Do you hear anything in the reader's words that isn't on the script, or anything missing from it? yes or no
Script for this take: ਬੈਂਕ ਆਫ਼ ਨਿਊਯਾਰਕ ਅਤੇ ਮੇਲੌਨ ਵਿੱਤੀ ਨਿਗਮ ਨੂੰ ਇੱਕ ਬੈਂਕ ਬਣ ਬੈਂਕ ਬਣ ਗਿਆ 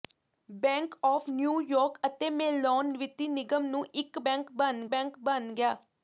no